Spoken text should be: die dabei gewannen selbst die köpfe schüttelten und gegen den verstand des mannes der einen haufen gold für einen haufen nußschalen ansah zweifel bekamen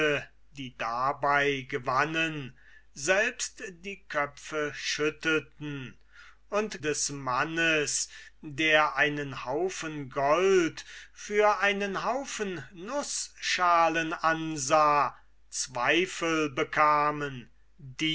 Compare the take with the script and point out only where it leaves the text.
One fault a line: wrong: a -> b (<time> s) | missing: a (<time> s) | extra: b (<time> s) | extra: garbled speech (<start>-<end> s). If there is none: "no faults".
missing: gegen den verstand (6.8 s)